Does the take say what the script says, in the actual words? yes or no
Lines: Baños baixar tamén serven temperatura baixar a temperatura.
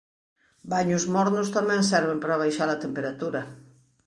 no